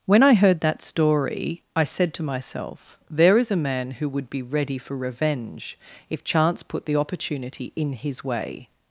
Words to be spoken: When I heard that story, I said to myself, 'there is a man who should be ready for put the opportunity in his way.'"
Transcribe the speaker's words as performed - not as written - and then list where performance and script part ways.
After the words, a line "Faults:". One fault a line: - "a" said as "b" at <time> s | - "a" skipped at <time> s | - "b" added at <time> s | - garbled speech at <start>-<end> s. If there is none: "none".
When I heard that story, I said to myself, 'there is a man who would be ready for revenge if chance put the opportunity in his way.'"
Faults:
- "should" said as "would" at 4.1 s
- "revenge if chance" added at 5.0 s